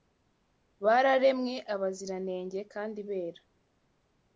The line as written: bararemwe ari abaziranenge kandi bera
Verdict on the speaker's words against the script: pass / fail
fail